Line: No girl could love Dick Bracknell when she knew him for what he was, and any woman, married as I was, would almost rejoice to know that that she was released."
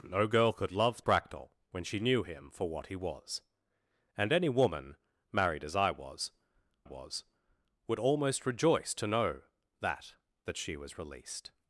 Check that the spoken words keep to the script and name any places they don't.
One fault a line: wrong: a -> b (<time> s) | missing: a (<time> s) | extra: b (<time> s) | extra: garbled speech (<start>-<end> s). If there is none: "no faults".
missing: Dick (1.0 s)
extra: was (6.8 s)